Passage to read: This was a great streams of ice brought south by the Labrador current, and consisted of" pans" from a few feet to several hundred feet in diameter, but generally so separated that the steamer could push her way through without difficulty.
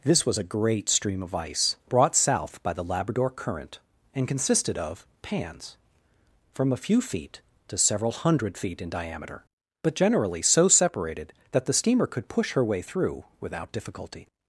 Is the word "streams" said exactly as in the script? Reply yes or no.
no